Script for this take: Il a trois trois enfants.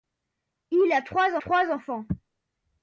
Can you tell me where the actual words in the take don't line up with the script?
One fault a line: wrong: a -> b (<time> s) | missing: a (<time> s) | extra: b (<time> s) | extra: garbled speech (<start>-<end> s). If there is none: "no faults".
no faults